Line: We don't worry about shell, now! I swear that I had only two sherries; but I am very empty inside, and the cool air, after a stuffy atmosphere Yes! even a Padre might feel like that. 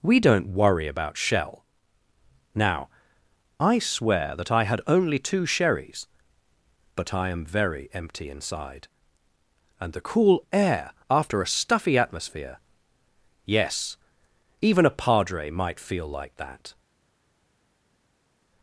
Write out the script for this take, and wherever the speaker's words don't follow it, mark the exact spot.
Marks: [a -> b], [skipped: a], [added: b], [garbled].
We don't worry about shell, now! I swear that I had only two sherries; but I am very empty inside, and the cool air, after a stuffy atmosphere Yes! even a Padre might feel like that.